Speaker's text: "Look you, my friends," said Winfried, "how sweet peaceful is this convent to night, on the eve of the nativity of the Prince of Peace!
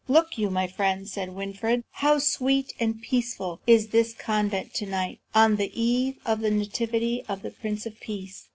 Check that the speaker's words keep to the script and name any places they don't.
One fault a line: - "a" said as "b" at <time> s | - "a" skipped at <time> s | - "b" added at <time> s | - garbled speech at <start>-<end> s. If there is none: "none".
- "and" added at 2.8 s